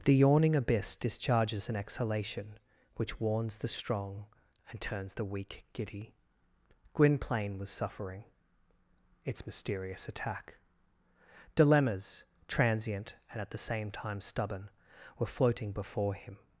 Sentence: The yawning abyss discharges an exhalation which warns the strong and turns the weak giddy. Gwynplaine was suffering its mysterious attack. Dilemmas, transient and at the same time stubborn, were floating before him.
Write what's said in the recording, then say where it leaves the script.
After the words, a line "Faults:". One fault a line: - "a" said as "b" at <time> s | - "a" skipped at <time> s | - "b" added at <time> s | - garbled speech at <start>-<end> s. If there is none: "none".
The yawning abyss discharges an exhalation which warns the strong and turns the weak giddy. Gwynplaine was suffering its mysterious attack. Dilemmas, transient and at the same time stubborn, were floating before him.
Faults:
none